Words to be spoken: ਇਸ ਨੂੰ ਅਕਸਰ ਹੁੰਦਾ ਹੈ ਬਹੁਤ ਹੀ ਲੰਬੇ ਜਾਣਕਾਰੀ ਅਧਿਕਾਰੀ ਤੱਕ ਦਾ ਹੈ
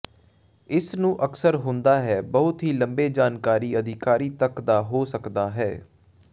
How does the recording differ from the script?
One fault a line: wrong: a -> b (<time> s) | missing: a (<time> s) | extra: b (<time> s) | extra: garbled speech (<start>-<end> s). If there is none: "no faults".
extra: ਹੋ ਸਕਦਾ (4.8 s)